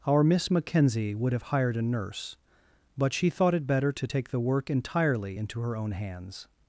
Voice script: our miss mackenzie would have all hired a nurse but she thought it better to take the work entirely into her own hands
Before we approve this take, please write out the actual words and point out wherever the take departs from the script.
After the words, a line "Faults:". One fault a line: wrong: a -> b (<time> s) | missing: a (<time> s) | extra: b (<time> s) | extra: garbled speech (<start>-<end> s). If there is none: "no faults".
our miss mackenzie would have hired a nurse but she thought it better to take the work entirely into her own hands
Faults:
missing: all (1.4 s)